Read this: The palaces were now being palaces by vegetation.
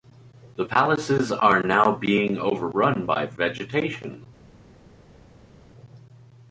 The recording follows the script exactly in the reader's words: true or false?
false